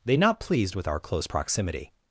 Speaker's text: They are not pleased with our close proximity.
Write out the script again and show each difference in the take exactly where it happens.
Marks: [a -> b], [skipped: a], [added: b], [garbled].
They [skipped: are] not pleased with our close proximity.